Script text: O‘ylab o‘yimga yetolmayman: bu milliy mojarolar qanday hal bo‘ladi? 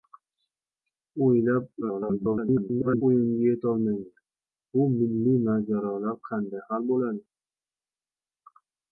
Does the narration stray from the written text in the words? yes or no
yes